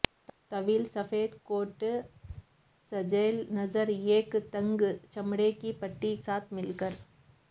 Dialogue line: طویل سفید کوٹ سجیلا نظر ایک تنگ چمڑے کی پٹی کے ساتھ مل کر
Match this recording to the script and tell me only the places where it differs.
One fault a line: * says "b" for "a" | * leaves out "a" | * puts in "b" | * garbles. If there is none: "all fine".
* leaves out "کے"